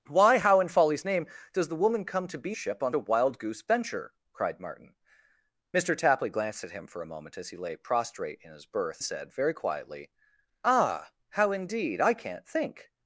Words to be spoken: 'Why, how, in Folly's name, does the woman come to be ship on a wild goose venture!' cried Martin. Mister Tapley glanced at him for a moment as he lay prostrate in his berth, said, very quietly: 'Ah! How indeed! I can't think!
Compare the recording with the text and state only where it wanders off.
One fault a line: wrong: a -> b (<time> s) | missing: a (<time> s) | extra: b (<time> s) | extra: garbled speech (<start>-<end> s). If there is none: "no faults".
no faults